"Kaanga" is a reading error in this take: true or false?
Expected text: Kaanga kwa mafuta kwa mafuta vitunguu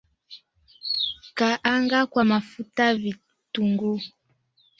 false